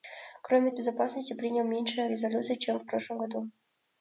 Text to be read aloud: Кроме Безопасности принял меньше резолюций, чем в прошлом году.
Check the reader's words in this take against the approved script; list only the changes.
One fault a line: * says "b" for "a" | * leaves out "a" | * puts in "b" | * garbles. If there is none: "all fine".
all fine